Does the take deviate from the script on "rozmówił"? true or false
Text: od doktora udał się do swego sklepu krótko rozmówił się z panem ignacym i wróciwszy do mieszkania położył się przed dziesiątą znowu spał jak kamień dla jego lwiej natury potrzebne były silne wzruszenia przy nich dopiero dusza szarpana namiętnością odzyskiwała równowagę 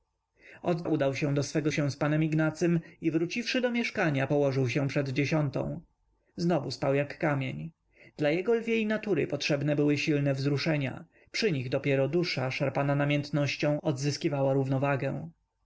true